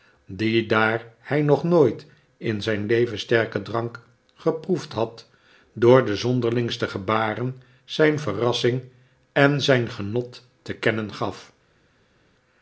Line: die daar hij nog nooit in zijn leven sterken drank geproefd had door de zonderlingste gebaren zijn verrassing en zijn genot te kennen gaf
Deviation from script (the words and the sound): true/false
false